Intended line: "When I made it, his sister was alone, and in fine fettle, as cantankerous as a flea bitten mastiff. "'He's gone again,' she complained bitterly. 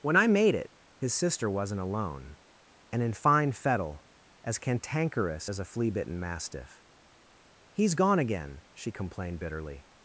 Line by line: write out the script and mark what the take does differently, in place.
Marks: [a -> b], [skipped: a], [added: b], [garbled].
"When I made it, his sister [was -> wasn't] alone, and in fine fettle, as cantankerous as a flea bitten mastiff. "'He's gone again,' she complained bitterly.